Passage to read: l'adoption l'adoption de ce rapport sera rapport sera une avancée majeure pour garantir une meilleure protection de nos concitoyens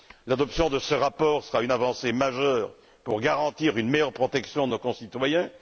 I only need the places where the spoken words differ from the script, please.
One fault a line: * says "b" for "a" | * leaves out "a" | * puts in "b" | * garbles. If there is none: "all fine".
* leaves out "l'adoption"
* leaves out "rapport sera"